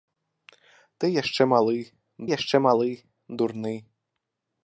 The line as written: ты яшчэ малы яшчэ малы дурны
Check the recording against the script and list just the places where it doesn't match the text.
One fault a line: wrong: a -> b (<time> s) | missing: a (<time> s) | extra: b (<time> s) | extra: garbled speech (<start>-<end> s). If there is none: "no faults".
no faults